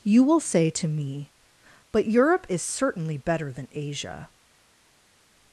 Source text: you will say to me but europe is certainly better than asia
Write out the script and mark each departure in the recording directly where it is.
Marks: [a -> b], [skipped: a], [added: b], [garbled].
you will say to me but europe is certainly better than asia